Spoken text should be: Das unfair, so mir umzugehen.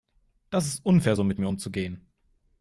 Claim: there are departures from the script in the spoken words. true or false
true